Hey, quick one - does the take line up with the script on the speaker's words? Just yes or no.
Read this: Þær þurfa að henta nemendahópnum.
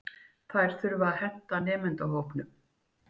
yes